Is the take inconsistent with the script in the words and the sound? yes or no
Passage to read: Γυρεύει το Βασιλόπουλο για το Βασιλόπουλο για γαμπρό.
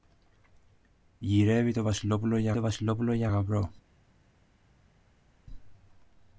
no